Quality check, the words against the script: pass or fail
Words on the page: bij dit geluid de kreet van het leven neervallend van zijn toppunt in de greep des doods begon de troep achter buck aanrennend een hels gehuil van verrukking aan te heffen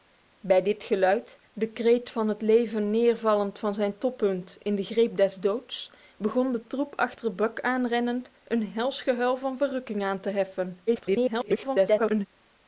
fail